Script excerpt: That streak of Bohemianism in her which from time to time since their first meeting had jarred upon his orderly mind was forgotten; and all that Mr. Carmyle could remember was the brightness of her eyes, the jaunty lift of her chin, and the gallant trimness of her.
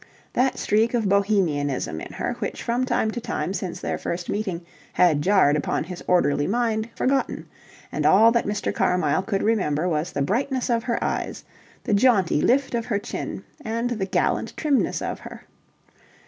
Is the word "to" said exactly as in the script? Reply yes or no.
yes